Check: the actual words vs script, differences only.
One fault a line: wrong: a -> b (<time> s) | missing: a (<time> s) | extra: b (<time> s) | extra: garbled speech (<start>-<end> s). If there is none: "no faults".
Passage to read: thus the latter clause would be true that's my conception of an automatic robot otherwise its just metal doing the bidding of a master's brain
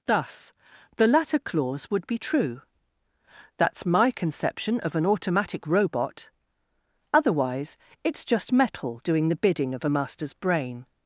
no faults